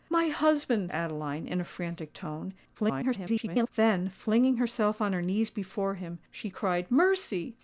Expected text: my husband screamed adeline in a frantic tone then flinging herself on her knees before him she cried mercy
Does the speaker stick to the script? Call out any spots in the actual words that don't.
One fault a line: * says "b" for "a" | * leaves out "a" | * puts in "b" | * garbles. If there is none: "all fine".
* leaves out "screamed"
* garbles